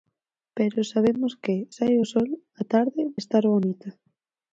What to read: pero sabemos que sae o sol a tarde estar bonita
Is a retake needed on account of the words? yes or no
no